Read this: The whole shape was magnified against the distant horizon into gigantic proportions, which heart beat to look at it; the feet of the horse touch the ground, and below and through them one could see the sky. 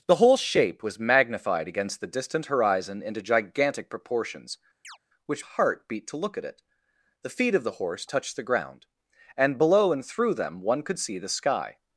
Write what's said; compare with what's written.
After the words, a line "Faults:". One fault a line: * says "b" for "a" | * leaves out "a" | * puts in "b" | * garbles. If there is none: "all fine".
The whole shape was magnified against the distant horizon into gigantic proportions, which heart beat to look at it; the feet of the horse touch the ground, and below and through them one could see the sky.
Faults:
all fine